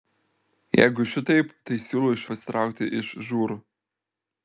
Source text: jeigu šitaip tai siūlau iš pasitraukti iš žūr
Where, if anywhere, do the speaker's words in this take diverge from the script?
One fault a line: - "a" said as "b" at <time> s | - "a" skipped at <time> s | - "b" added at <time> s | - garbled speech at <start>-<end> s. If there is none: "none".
none